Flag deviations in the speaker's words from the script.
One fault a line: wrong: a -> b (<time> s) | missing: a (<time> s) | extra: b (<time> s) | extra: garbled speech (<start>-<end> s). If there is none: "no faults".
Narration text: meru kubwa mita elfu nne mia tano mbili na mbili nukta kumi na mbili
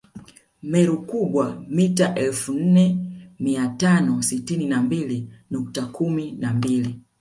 wrong: mbili -> sitini (4.2 s)